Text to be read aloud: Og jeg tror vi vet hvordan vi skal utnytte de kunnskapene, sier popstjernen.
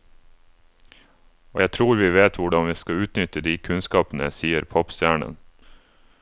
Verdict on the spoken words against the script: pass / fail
pass